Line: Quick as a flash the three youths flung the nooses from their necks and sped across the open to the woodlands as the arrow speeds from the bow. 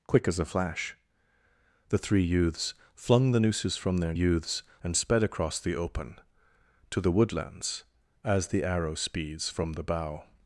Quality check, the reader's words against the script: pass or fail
fail